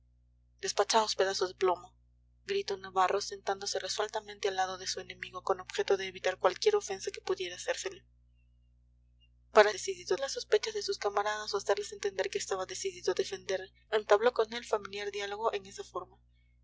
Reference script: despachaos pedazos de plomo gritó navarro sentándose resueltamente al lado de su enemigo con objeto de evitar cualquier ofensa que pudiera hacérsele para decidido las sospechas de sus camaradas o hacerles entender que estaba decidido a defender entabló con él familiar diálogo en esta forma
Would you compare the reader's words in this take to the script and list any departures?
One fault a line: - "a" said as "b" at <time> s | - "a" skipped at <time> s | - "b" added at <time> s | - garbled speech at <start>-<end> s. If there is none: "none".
none